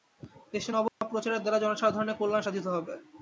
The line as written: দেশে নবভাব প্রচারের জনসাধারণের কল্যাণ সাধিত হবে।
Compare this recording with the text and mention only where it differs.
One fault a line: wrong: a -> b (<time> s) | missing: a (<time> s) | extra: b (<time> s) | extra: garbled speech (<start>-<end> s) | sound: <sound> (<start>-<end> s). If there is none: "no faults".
sound: dropout (0.9-1.0 s)
extra: দ্বারা (1.4 s)